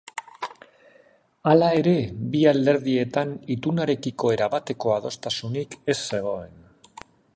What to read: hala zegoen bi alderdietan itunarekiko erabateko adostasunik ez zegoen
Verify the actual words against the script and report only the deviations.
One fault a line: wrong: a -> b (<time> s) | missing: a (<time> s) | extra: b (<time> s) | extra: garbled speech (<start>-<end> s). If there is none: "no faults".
wrong: zegoen -> ere (1.8 s)